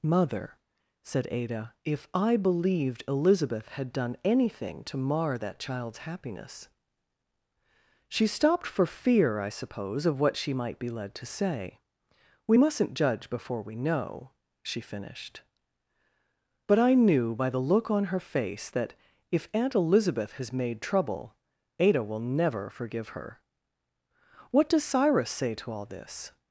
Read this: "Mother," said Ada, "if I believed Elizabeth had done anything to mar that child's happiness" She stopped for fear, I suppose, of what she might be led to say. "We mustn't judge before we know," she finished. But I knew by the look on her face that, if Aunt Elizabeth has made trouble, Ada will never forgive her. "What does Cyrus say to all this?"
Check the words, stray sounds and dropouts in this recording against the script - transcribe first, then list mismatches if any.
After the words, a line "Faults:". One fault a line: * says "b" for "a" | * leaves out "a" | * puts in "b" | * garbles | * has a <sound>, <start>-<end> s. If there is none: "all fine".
"Mother," said Ada, "if I believed Elizabeth had done anything to mar that child's happiness" She stopped for fear, I suppose, of what she might be led to say. "We mustn't judge before we know," she finished. But I knew by the look on her face that, if Aunt Elizabeth has made trouble, Ada will never forgive her. "What does Cyrus say to all this?"
Faults:
all fine